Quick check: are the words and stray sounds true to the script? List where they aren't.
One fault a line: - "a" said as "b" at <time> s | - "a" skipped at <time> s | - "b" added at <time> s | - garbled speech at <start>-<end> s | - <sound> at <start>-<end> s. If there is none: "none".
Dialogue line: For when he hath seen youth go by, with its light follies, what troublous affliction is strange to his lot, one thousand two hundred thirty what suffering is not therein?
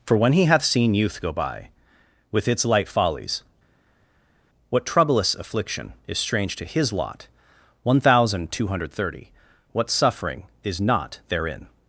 none